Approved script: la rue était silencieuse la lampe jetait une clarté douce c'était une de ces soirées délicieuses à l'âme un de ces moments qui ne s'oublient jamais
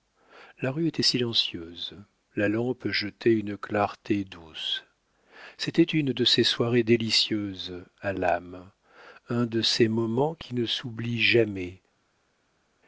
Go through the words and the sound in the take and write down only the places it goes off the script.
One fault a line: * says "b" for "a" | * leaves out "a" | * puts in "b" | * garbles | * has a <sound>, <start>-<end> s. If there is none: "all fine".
all fine